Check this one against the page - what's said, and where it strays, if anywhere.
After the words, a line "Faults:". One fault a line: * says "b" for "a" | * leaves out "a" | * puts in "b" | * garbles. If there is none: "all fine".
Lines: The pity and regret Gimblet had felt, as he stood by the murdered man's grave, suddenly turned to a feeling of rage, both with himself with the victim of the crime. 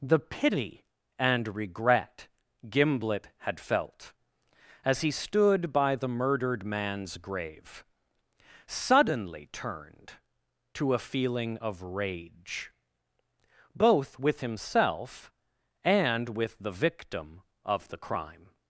The pity and regret Gimblet had felt, as he stood by the murdered man's grave, suddenly turned to a feeling of rage, both with himself and with the victim of the crime.
Faults:
* puts in "and"